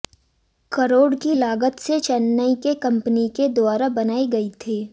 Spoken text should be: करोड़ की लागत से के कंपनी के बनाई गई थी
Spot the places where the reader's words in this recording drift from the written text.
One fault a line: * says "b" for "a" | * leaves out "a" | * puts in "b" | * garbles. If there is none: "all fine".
* puts in "चेन्नई"
* puts in "द्वारा"